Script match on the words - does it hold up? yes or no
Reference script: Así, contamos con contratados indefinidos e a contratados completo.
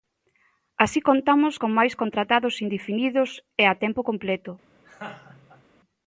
no